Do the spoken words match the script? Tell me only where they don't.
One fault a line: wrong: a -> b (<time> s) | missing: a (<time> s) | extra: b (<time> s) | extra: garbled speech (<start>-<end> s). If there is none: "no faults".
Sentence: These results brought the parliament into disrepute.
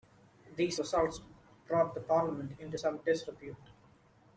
extra: some (2.7 s)